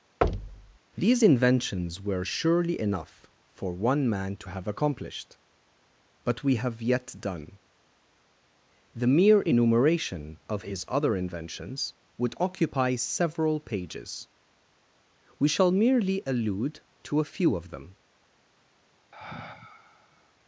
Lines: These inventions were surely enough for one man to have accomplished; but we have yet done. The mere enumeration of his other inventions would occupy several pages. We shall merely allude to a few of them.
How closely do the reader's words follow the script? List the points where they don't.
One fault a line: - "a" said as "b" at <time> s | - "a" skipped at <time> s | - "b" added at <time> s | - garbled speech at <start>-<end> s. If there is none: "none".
none